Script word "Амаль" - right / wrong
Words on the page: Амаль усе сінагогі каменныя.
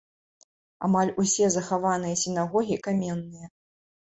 right